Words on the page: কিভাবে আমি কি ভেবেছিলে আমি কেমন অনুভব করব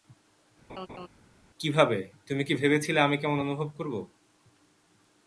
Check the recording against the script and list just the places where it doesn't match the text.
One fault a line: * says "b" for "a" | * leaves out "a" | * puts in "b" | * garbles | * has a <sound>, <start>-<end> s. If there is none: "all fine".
* has a laugh, 0.7-1.1 s
* says "তুমি" for "আমি"